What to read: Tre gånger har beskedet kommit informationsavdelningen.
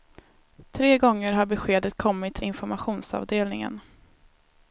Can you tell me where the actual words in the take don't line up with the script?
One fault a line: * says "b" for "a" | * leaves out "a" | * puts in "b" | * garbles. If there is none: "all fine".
all fine